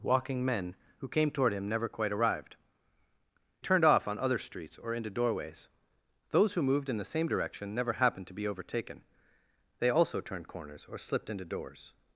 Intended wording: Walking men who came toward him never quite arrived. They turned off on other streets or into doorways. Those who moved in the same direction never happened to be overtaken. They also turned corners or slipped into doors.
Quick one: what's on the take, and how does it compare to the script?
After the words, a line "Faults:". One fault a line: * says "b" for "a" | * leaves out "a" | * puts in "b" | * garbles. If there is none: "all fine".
Walking men who came toward him never quite arrived. Turned off on other streets or into doorways. Those who moved in the same direction never happened to be overtaken. They also turned corners or slipped into doors.
Faults:
* leaves out "They"